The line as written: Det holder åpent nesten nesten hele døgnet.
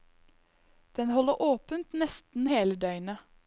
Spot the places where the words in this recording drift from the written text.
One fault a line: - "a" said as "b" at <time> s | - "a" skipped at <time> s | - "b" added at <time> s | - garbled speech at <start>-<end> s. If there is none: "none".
- "Det" said as "Den" at 0.9 s
- "nesten" skipped at 2.5 s